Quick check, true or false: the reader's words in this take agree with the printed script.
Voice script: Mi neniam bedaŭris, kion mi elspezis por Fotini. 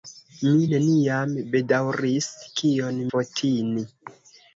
false